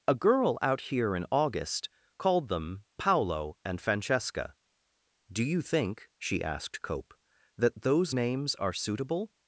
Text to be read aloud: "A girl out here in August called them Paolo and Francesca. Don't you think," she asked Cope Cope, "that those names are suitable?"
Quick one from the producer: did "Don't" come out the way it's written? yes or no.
no